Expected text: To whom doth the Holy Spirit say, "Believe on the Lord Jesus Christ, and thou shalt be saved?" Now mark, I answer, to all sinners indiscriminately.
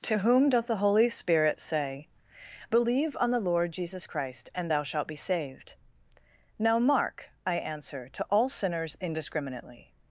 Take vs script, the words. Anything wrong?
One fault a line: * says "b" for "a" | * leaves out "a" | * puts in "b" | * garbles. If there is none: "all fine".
all fine